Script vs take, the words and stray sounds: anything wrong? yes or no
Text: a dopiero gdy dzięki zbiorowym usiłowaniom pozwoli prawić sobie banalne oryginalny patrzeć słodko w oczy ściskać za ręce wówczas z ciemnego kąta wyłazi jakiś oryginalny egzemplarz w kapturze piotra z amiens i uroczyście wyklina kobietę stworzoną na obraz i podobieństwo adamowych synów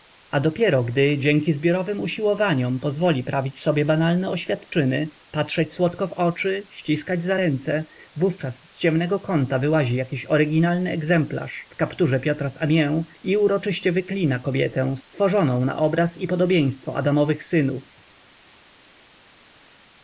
yes